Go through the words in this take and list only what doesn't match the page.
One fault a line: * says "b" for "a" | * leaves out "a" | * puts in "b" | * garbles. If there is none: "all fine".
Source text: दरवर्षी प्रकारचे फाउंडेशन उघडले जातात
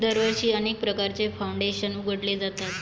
* puts in "अनेक"